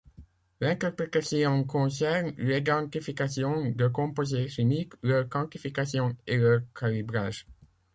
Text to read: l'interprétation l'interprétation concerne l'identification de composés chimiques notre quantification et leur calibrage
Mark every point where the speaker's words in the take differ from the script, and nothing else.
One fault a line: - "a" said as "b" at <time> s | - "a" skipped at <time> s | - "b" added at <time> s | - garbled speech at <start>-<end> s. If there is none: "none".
- "l'interprétation" skipped at 1.6 s
- "notre" said as "leur" at 5.0 s